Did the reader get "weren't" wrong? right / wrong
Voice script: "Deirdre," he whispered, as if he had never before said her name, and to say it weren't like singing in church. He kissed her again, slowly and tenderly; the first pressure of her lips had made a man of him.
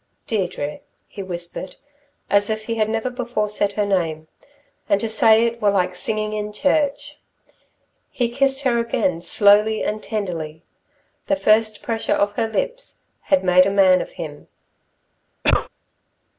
wrong